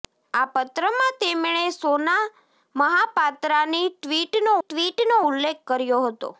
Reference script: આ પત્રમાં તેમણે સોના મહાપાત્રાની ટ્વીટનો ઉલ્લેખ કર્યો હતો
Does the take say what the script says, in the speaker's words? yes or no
no